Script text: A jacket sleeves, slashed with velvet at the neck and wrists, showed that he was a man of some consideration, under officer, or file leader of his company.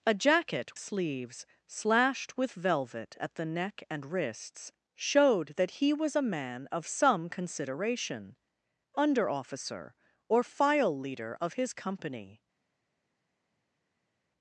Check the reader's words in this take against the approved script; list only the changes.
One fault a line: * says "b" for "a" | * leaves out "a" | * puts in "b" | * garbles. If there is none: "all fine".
all fine